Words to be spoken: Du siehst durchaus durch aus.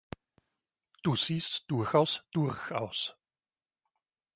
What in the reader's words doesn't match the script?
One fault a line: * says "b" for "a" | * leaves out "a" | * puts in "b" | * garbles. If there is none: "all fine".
all fine